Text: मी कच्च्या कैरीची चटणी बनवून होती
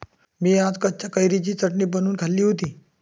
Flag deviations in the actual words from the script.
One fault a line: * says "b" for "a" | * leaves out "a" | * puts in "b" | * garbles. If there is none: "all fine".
* puts in "आज"
* puts in "खाल्ली"